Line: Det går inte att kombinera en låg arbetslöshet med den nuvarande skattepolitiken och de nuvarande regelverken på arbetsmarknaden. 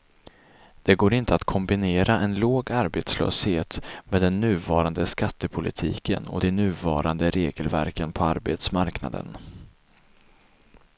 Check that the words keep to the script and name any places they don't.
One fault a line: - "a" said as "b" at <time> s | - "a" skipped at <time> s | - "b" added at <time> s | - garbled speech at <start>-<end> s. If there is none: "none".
none